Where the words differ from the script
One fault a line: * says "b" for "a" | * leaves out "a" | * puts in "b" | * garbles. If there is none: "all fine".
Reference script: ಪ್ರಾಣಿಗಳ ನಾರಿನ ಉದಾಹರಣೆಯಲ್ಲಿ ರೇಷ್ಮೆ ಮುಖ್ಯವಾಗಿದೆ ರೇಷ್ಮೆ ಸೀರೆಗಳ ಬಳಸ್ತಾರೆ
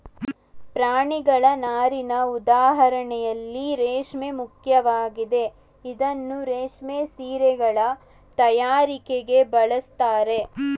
* puts in "ಇದನ್ನೂ"
* puts in "ತಯಾರಿಕೆಗೆ"